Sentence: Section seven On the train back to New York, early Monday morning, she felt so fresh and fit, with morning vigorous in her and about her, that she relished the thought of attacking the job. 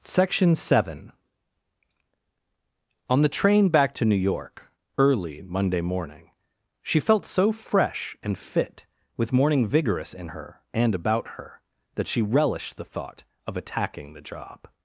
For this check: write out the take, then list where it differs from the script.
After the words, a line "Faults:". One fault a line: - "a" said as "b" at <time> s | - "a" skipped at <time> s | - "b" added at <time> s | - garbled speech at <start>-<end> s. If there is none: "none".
Section seven On the train back to New York, early Monday morning, she felt so fresh and fit, with morning vigorous in her and about her, that she relished the thought of attacking the job.
Faults:
none